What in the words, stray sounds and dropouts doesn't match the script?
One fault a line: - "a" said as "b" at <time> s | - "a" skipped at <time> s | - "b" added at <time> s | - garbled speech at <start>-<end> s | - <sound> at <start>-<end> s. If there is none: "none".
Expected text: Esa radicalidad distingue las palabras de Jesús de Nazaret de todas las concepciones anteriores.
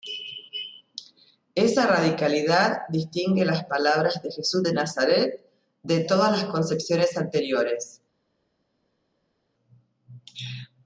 none